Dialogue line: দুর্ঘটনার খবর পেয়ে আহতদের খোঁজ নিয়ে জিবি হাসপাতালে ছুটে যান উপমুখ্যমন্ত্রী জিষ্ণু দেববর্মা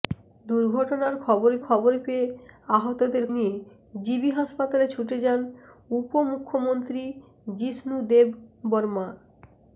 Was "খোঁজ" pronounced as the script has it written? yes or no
no